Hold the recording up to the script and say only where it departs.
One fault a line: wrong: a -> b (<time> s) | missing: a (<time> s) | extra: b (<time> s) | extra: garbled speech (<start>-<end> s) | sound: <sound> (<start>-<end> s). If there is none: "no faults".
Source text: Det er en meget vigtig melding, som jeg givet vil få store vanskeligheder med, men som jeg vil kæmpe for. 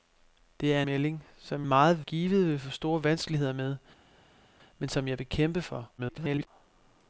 missing: en meget vigtig (0.8 s)
wrong: jeg -> meget (1.7 s)
extra: garbled speech (6.0-6.5 s)